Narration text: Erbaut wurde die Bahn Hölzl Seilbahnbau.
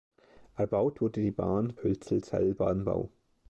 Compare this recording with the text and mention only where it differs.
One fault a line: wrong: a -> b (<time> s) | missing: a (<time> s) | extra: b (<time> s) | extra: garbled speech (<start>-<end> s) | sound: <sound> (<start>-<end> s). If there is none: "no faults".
no faults